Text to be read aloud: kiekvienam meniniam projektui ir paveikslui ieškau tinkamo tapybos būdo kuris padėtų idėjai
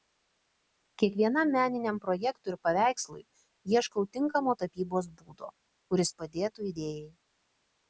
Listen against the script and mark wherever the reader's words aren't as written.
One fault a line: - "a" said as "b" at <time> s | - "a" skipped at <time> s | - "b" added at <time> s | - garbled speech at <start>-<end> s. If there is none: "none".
none